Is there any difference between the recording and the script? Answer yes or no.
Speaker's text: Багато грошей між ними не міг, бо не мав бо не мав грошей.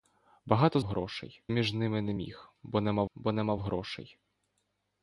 no